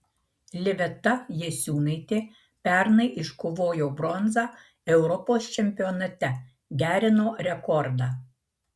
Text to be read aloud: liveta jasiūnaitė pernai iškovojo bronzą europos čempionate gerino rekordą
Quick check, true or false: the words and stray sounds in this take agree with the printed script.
true